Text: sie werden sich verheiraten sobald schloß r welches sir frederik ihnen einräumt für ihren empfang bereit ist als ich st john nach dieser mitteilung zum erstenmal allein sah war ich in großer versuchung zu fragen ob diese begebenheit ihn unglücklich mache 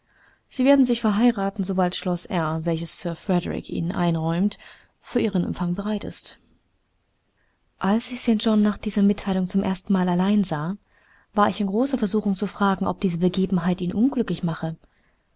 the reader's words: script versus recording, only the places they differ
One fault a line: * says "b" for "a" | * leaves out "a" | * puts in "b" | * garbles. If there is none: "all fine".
all fine